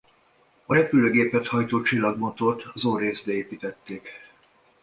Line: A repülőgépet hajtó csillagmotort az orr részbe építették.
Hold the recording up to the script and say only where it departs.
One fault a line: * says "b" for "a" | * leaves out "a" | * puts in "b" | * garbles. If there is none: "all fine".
all fine